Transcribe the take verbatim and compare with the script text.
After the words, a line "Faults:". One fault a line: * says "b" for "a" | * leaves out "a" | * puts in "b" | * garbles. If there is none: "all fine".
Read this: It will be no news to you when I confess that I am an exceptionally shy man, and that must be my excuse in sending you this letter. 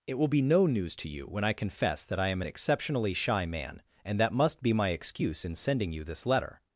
It will be no news to you when I confess that I am an exceptionally shy man, and that must be my excuse in sending you this letter.
Faults:
all fine